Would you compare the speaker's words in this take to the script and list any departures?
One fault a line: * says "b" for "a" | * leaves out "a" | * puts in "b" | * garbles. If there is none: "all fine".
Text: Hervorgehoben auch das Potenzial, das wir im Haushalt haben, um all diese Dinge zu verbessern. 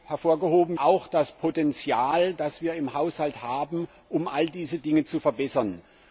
all fine